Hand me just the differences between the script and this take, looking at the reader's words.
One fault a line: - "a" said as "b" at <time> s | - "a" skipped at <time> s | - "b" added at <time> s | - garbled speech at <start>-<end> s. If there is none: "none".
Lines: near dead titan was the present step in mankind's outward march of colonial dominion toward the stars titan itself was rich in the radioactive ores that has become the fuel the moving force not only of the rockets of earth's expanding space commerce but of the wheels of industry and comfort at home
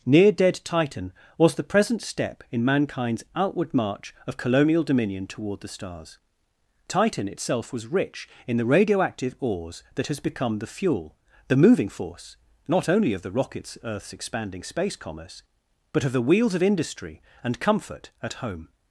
- "of" skipped at 13.8 s